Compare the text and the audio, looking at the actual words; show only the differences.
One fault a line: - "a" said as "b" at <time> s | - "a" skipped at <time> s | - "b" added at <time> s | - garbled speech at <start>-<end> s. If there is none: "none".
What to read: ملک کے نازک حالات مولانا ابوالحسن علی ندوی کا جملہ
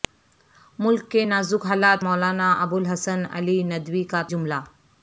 none